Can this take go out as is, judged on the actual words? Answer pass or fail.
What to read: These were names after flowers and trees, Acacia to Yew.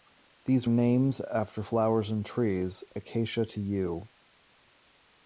fail